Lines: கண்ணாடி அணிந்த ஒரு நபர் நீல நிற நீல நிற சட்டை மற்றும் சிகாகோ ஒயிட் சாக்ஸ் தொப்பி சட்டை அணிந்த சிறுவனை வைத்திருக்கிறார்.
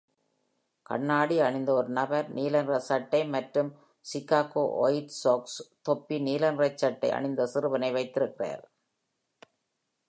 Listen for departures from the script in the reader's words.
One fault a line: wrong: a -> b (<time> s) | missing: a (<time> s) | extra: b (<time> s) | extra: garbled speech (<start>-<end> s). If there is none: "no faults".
missing: நீல நிற (2.8 s)
extra: நீல நிற (6.2 s)